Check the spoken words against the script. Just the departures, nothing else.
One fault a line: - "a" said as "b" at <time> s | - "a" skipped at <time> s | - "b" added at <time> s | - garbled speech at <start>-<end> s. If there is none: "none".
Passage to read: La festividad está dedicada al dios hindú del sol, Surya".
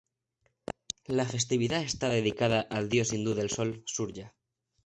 none